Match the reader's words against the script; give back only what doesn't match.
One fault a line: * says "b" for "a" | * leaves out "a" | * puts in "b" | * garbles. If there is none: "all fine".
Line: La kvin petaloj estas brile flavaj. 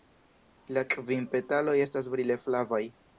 all fine